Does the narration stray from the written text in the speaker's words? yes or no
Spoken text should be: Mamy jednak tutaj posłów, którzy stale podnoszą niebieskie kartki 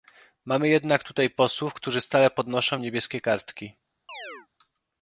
no